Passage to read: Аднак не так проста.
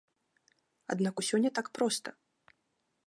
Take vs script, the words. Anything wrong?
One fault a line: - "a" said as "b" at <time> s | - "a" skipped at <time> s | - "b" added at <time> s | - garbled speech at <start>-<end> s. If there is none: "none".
- "усё" added at 1.2 s